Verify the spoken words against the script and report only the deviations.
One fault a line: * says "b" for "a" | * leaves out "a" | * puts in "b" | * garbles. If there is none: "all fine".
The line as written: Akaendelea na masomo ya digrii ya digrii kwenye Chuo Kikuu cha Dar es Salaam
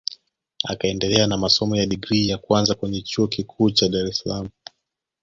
* says "kwanza" for "digrii"